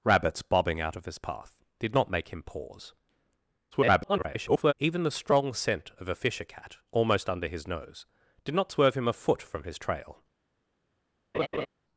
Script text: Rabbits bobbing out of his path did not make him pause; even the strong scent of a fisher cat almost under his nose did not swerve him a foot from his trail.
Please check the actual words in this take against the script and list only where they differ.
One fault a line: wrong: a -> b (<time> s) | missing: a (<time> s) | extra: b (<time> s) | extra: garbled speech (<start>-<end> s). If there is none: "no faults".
extra: garbled speech (3.7-4.7 s)